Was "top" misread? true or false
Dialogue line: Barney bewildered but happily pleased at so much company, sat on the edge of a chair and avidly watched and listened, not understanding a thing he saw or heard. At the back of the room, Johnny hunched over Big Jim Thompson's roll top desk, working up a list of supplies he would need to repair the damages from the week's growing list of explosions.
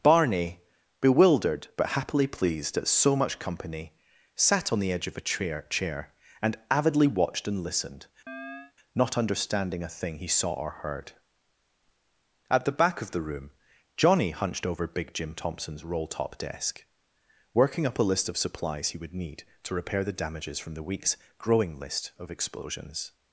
false